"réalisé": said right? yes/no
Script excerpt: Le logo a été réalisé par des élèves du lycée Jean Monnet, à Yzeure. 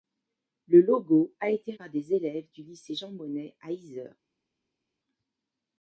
no